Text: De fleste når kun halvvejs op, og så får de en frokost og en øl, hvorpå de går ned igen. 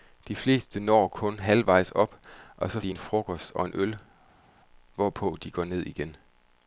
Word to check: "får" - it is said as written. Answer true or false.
false